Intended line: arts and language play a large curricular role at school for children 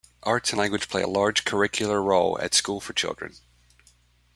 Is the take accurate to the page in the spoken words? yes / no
yes